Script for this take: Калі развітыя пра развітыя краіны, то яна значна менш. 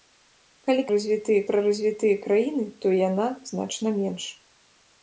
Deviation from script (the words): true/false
false